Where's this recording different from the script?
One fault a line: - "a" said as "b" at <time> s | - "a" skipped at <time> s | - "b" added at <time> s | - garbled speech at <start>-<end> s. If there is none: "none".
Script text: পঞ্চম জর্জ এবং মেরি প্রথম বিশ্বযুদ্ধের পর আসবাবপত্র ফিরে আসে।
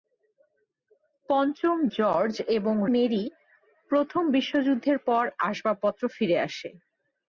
none